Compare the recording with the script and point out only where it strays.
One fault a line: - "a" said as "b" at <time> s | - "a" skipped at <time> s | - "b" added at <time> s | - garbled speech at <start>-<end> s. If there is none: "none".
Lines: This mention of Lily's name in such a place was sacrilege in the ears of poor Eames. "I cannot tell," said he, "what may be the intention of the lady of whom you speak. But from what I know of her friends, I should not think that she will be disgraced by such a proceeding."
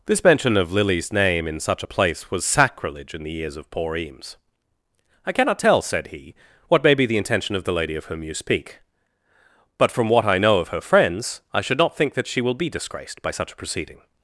none